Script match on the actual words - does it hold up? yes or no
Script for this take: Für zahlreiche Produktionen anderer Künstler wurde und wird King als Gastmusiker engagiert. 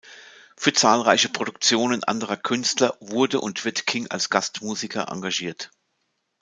yes